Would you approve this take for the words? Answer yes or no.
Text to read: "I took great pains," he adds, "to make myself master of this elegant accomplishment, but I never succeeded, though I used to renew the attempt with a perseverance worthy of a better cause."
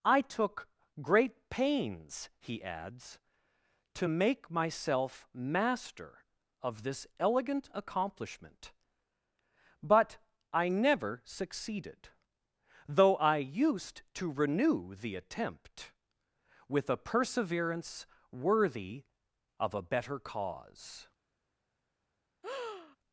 yes